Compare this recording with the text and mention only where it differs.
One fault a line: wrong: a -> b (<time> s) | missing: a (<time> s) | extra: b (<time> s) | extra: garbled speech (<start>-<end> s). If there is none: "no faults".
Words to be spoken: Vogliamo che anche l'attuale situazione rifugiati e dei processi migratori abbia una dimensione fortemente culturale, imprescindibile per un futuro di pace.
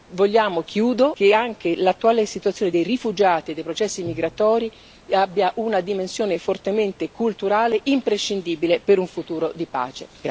extra: dei (2.7 s)